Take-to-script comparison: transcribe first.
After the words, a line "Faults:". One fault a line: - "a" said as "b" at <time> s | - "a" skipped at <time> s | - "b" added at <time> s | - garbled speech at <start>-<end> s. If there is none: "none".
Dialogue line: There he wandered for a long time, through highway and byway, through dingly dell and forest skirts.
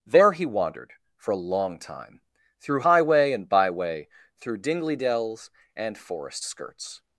There he wandered for a long time, through highway and byway, through dingly dells and forest skirts.
Faults:
- "dell" said as "dells" at 5.0 s